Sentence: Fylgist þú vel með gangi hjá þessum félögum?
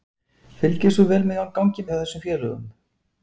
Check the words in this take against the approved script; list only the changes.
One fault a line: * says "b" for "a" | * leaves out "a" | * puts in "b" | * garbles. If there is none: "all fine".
all fine